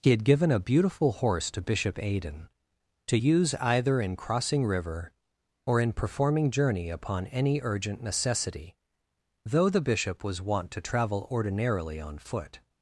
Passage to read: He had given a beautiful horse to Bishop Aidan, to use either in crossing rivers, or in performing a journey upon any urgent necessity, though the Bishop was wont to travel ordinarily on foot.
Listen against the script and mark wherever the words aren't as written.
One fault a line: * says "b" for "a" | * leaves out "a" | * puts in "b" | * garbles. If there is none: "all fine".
* says "river" for "rivers"
* leaves out "a"